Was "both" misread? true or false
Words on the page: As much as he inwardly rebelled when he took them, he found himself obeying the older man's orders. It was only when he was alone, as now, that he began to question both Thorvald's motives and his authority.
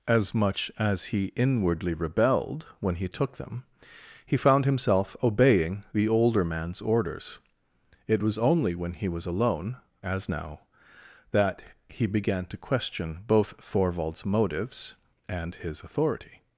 false